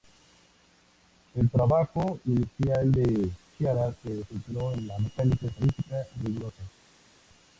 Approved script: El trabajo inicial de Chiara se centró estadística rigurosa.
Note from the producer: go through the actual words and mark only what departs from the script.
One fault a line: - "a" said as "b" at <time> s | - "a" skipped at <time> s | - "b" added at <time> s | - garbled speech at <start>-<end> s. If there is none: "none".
- "en la mecánica" added at 4.7 s